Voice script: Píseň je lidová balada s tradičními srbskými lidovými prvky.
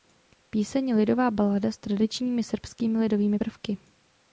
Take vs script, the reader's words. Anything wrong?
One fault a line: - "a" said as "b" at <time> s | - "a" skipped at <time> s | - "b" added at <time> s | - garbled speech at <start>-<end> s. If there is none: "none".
none